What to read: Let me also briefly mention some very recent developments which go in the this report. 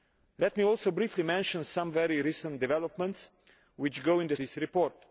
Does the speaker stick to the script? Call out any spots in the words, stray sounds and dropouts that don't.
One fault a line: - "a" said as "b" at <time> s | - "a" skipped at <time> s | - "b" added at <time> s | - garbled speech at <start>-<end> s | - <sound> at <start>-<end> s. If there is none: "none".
none